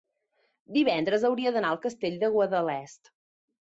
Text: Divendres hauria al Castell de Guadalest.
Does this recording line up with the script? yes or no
no